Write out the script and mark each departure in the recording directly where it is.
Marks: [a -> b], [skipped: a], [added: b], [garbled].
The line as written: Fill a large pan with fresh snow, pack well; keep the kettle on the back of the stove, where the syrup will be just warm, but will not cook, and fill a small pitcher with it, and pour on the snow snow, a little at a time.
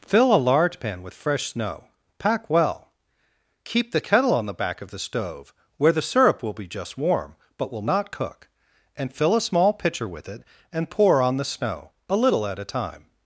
Fill a large pan with fresh snow, pack well; keep the kettle on the back of the stove, where the syrup will be just warm, but will not cook, and fill a small pitcher with it, and pour on the snow [skipped: snow,] a little at a time.